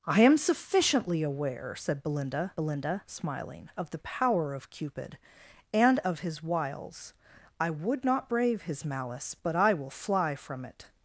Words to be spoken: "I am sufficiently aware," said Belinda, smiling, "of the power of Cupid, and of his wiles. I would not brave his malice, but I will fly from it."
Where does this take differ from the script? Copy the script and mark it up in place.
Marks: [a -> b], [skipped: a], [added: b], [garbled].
"I am sufficiently aware," said Belinda, [added: Belinda] smiling, "of the power of Cupid, and of his wiles. I would not brave his malice, but I will fly from it."